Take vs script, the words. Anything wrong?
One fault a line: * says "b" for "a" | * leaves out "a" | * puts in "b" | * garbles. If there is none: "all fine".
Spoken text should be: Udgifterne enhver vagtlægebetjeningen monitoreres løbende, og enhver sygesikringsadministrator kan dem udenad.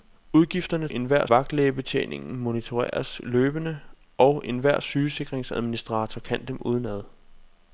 all fine